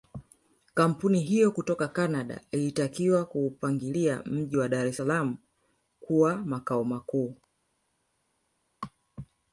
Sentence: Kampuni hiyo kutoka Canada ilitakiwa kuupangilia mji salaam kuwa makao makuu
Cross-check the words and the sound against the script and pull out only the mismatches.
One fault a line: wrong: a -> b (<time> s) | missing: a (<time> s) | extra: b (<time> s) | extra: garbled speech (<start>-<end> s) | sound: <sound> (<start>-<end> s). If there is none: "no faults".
extra: wa Dar es (4.6 s)